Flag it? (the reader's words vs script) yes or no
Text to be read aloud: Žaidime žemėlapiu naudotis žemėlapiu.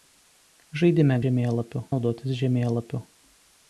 no